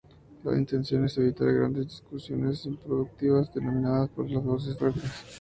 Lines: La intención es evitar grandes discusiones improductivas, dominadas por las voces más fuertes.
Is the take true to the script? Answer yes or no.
no